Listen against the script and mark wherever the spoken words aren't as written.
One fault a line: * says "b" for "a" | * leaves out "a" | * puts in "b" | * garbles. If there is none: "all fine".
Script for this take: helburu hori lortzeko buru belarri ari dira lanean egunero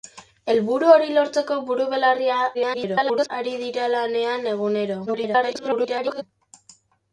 * garbles
* garbles